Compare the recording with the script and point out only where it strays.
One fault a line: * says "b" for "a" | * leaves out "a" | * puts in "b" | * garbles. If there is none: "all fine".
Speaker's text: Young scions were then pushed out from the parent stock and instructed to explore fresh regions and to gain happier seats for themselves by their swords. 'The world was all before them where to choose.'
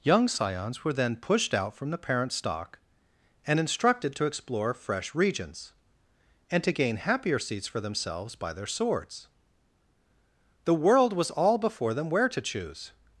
all fine